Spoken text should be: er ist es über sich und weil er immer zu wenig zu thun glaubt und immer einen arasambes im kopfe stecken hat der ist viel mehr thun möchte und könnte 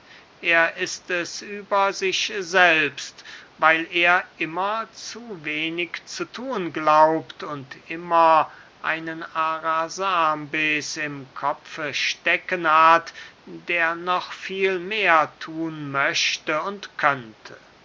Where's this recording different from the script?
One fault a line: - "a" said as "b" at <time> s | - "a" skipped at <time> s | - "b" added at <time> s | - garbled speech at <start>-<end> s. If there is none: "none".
- "und" said as "selbst" at 2.4 s
- "ist" said as "noch" at 13.9 s